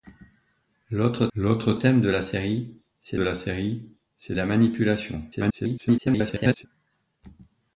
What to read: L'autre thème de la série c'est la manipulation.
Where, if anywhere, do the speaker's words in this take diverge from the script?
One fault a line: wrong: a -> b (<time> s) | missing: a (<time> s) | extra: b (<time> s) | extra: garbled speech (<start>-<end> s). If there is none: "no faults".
extra: l'autre (1.3 s)
extra: série c'est la (3.3 s)
extra: garbled speech (5.3-6.7 s)